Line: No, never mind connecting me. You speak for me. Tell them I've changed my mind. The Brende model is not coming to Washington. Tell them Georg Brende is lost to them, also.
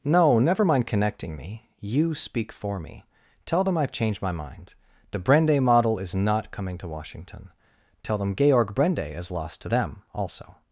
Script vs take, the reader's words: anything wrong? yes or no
no